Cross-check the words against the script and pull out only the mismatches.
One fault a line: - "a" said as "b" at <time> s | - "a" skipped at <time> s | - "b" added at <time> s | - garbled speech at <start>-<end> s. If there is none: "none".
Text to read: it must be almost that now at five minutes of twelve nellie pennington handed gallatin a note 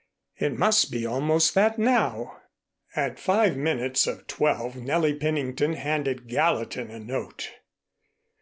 none